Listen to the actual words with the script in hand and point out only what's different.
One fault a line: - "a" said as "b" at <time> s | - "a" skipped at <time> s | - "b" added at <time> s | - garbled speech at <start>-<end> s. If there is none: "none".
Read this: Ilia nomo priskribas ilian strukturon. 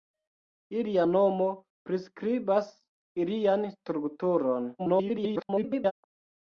- garbled speech at 4.8-5.9 s